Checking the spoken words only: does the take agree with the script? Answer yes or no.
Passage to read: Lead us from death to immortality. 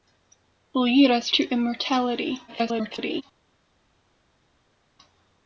no